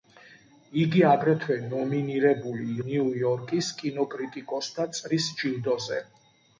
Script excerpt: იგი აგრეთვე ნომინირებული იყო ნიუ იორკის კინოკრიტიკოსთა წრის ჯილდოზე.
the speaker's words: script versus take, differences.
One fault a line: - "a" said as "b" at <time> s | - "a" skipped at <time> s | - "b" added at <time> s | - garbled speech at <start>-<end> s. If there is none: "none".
- "იყო" skipped at 2.6 s